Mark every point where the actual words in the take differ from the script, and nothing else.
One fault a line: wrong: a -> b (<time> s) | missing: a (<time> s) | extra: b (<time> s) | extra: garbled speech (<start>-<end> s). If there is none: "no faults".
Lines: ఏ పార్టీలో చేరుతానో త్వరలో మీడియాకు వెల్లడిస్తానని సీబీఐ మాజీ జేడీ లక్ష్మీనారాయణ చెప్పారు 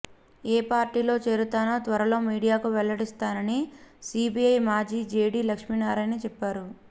no faults